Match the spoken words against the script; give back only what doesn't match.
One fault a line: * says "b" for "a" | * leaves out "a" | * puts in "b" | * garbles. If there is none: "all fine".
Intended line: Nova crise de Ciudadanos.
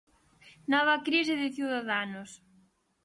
all fine